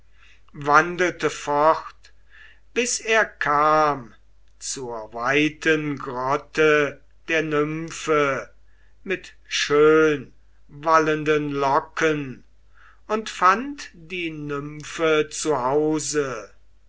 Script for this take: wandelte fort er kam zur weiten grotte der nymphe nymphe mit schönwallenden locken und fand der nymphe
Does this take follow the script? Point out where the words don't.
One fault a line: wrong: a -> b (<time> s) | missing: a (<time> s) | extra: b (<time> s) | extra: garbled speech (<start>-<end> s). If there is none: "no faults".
extra: bis (2.7 s)
missing: nymphe (8.5 s)
wrong: der -> die (13.9 s)